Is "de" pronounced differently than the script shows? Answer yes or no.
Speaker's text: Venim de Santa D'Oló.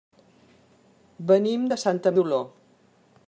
no